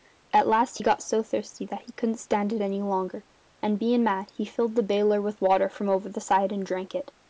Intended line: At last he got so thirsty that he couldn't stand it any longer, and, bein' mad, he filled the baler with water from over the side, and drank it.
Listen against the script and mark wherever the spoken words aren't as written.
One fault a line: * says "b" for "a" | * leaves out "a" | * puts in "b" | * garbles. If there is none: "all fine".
all fine